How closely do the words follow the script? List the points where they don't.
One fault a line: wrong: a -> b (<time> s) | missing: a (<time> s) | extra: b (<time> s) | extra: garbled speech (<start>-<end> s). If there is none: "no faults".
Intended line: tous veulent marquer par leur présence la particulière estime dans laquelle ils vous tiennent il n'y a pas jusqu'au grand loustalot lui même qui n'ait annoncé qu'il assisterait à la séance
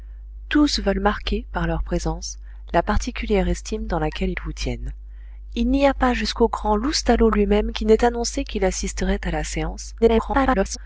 extra: garbled speech (10.0-10.8 s)